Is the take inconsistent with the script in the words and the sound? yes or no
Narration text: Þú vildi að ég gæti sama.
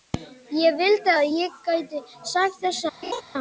yes